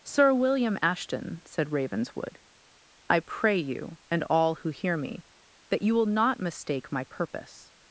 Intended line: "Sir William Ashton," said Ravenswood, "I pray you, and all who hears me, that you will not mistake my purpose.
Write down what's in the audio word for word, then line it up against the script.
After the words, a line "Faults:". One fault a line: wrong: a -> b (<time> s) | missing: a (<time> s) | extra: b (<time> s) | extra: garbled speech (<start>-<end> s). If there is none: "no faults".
"Sir William Ashton," said Ravenswood, "I pray you, and all who hear me, that you will not mistake my purpose.
Faults:
wrong: hears -> hear (4.7 s)